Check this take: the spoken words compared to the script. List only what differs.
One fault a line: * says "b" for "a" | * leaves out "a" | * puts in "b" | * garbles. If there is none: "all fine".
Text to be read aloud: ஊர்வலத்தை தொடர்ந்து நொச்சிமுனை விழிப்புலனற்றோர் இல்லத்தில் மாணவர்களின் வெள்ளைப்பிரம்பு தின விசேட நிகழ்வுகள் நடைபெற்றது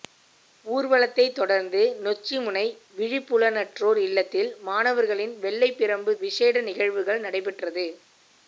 * leaves out "தின"